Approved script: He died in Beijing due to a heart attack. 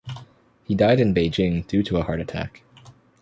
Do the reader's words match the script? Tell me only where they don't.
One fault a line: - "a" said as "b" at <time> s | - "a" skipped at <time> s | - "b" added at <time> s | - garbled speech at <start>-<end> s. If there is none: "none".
none